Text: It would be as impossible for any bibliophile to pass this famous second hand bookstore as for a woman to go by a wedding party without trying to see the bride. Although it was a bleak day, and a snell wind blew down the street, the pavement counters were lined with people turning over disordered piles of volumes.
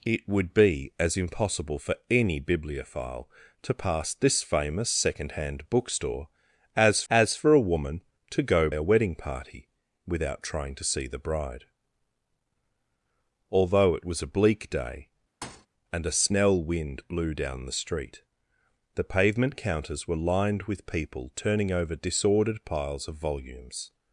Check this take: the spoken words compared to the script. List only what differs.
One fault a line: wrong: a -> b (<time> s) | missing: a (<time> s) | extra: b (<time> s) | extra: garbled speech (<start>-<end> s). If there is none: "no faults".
extra: as (7.1 s)
missing: by (8.7 s)